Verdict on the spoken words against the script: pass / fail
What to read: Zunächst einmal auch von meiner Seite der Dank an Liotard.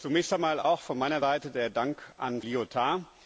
pass